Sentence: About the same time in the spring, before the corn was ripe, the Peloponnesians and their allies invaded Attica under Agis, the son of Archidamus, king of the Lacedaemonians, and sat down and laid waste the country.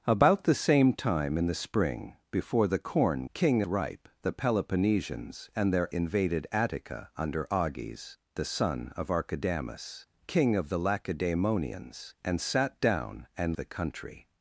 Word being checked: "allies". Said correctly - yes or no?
no